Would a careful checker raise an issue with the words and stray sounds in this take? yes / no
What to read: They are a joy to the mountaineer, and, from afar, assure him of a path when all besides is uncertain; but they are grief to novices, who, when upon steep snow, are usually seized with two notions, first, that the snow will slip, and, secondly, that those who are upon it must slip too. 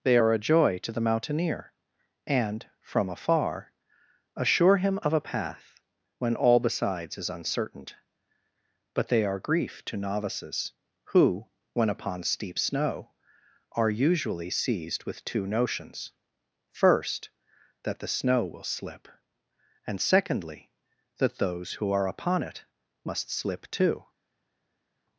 no